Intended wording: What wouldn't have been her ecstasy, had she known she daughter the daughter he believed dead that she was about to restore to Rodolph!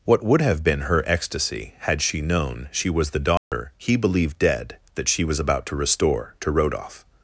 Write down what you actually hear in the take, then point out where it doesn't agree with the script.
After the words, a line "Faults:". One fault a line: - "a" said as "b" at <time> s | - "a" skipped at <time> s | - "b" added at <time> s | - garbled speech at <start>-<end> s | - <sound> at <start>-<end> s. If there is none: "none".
What would have been her ecstasy, had she known she was the daughter he believed dead that she was about to restore to Rodolph!
Faults:
- "wouldn't" said as "would" at 0.2 s
- "daughter" said as "was" at 2.9 s
- dropout at 3.4-3.5 s